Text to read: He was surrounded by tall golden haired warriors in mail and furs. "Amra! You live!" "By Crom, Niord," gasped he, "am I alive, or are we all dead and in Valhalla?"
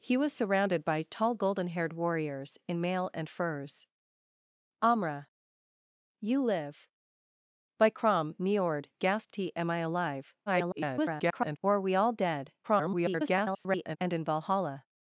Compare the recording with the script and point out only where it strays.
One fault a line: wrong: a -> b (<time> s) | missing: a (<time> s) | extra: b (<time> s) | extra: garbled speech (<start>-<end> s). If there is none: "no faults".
extra: garbled speech (10.5-11.6 s)
extra: garbled speech (12.6-14.0 s)